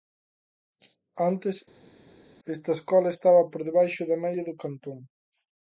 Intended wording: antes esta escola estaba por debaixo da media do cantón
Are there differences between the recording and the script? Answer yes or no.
no